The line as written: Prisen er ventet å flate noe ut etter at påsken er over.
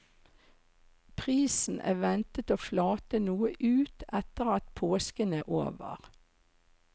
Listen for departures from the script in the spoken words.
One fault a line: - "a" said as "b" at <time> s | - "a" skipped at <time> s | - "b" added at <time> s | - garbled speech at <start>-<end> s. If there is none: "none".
none